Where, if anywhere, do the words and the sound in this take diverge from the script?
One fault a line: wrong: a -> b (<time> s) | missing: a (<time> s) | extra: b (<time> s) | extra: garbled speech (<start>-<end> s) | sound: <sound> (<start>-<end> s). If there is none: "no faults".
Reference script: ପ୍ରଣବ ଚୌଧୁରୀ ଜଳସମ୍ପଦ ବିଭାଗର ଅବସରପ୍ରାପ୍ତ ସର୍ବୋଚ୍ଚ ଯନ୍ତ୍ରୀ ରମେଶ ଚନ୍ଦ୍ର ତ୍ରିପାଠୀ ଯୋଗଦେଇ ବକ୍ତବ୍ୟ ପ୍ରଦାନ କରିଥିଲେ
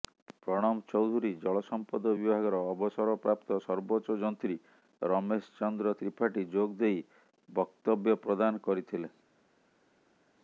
no faults